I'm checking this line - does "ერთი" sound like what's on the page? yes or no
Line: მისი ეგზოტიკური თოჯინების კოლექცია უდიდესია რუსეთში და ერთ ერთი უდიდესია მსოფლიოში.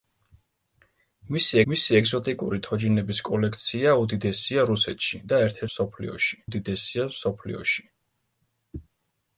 no